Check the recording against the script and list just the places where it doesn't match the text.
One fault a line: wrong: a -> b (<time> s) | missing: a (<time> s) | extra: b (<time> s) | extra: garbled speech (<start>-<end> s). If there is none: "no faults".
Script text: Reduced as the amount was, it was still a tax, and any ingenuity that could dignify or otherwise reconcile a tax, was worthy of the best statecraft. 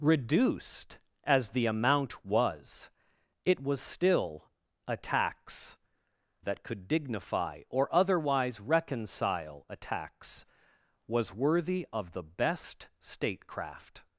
missing: and any ingenuity (5.8 s)